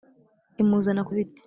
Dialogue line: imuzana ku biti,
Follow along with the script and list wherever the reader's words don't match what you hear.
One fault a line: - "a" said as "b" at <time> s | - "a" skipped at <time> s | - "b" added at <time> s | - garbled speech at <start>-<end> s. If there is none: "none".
none